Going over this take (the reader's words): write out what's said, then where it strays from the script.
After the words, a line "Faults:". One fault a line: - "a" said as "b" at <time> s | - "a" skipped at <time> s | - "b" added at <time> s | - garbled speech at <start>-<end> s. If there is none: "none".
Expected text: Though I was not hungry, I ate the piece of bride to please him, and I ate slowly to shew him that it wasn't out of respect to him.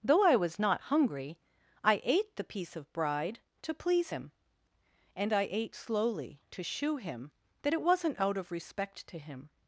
Though I was not hungry, I ate the piece of bride to please him, and I ate slowly to shew him that it wasn't out of respect to him.
Faults:
none